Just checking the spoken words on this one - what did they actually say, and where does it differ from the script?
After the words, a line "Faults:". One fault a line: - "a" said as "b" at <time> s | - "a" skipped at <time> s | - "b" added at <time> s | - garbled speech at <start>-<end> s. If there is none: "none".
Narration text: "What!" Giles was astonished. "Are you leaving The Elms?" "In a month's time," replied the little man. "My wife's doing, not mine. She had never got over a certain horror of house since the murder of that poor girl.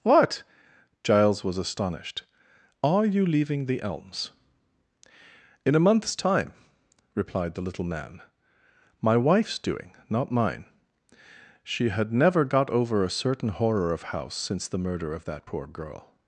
"What!" Giles was astonished. "Are you leaving The Elms?" "In a month's time," replied the little man. "My wife's doing, not mine. She had never got over a certain horror of house since the murder of that poor girl.
Faults:
none